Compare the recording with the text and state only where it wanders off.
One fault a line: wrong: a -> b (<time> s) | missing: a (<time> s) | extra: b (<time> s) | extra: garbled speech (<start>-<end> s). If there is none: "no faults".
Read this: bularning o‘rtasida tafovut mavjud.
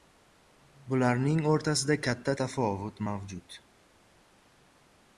extra: katta (2.1 s)